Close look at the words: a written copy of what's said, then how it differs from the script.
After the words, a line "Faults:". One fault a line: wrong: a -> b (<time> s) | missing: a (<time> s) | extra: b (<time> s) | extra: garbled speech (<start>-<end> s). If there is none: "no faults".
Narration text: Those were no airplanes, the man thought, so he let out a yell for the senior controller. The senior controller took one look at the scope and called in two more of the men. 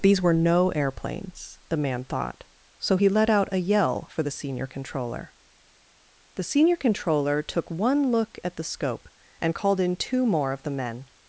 These were no airplanes, the man thought, so he let out a yell for the senior controller. The senior controller took one look at the scope and called in two more of the men.
Faults:
wrong: Those -> These (0.0 s)